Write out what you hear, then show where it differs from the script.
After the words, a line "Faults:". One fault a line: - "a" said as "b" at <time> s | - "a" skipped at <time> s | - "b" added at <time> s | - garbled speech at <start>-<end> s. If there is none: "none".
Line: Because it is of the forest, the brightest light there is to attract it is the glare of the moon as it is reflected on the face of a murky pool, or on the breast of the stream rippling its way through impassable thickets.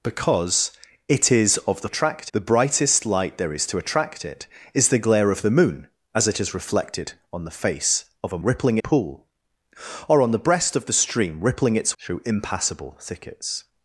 Because it is of the attract, the brightest light there is to attract it is the glare of the moon as it is reflected on the face of a rippling pool, or on the breast of the stream rippling its through impassable thickets.
Faults:
- "forest" said as "attract" at 1.8 s
- "murky" said as "rippling" at 8.4 s
- "way" skipped at 12.0 s